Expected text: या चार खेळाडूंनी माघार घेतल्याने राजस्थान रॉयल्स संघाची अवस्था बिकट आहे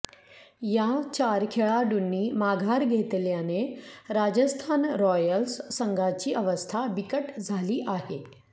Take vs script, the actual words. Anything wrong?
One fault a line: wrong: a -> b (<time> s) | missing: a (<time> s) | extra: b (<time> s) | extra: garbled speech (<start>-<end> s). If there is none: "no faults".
extra: झाली (7.4 s)